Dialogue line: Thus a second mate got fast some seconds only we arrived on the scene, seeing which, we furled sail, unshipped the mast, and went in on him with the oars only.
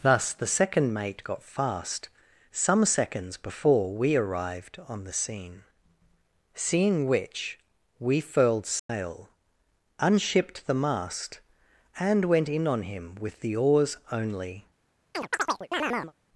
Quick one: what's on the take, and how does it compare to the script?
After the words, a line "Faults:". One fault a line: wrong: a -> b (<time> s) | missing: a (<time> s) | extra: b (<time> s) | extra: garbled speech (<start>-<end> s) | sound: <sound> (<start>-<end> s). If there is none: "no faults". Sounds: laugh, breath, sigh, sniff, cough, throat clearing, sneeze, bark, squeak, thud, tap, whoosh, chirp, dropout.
Thus the second mate got fast some seconds before we arrived on the scene, seeing which, we furled sail, unshipped the mast, and went in on him with the oars only.
Faults:
wrong: a -> the (0.3 s)
wrong: only -> before (3.4 s)
sound: dropout (8.8-8.9 s)
sound: chirp (15.1-16.1 s)